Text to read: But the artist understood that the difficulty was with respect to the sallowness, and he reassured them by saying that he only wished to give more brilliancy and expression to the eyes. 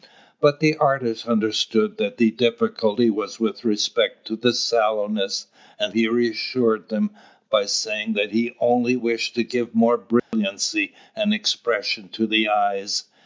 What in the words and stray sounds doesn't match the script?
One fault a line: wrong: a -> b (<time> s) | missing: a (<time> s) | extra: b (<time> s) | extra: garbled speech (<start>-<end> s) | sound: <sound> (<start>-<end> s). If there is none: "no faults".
sound: dropout (10.2-10.3 s)